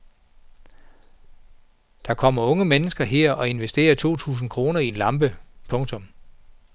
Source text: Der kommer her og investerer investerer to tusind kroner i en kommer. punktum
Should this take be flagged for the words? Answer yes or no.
yes